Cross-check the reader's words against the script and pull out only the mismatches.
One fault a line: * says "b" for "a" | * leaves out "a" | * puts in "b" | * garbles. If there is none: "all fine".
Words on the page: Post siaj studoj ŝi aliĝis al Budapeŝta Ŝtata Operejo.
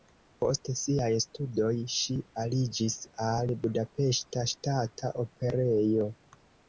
all fine